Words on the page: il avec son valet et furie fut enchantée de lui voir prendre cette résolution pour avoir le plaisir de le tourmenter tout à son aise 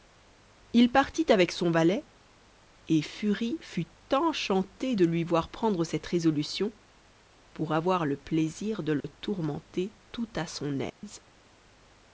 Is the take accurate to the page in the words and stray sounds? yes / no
no